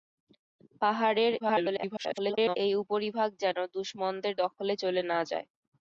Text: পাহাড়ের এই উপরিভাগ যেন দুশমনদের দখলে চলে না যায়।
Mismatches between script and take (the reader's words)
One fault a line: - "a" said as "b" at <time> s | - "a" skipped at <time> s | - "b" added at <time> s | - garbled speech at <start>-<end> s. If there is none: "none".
- garbled speech at 1.4-2.6 s